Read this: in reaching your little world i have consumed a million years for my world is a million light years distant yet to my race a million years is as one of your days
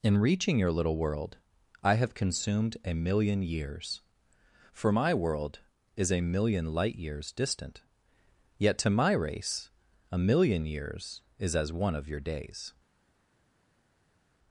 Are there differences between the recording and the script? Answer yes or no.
no